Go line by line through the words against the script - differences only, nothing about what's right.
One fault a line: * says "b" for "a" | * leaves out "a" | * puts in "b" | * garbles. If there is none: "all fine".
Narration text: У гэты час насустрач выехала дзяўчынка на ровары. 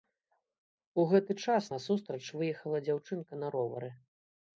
all fine